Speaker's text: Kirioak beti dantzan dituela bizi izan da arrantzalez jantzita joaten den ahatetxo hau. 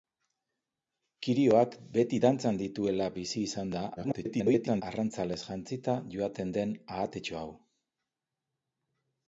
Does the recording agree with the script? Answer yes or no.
no